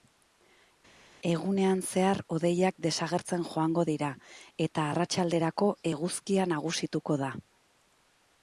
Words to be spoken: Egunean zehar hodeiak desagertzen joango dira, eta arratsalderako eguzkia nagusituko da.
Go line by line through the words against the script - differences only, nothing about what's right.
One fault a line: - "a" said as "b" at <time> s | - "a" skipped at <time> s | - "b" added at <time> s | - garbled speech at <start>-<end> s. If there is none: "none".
none